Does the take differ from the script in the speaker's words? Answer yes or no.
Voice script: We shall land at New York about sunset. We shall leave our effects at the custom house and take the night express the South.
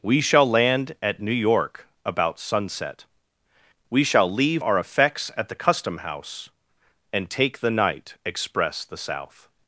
no